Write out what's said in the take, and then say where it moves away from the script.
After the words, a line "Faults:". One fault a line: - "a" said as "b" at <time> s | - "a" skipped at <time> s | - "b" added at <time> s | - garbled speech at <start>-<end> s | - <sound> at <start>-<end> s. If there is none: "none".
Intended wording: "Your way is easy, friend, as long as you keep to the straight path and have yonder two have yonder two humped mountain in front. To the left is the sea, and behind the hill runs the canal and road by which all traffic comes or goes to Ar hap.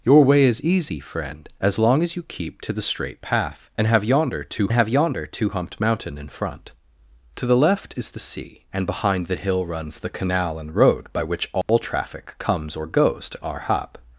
"Your way is easy, friend, as long as you keep to the straight path and have yonder two have yonder two humped mountain in front. To the left is the sea, and behind the hill runs the canal and road by which all traffic comes or goes to Ar hap.
Faults:
- dropout at 11.6-11.7 s